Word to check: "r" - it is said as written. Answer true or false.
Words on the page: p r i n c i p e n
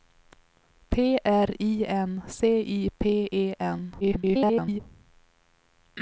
true